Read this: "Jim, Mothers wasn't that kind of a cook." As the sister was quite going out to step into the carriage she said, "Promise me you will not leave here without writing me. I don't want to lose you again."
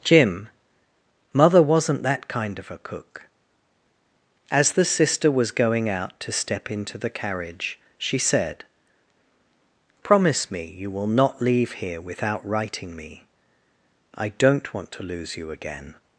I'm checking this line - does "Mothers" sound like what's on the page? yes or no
no